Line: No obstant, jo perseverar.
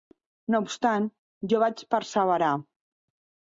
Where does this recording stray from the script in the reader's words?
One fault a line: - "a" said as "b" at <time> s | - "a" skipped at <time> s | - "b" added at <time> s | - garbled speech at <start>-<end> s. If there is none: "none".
- "vaig" added at 1.7 s